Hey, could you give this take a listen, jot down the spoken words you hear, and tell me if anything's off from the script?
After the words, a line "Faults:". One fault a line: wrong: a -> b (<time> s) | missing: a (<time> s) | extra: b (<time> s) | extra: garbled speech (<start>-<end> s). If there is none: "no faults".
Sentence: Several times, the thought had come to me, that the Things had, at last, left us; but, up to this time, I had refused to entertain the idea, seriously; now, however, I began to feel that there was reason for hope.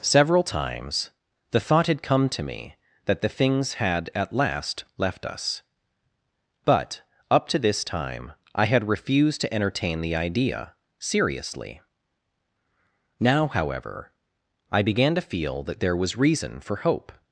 Several times, the thought had come to me, that the Things had, at last, left us; but, up to this time, I had refused to entertain the idea, seriously; now, however, I began to feel that there was reason for hope.
Faults:
no faults